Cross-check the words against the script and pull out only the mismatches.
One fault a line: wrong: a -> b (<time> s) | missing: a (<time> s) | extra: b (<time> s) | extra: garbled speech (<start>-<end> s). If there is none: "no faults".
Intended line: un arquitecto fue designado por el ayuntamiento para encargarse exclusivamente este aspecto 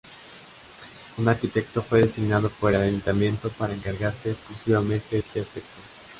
no faults